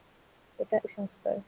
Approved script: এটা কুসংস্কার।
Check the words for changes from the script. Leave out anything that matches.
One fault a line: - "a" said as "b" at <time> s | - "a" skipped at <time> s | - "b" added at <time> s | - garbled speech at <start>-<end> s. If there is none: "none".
none